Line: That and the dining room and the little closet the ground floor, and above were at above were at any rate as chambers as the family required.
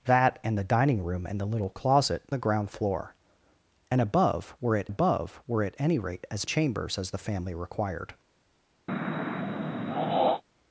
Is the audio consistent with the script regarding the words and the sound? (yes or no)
no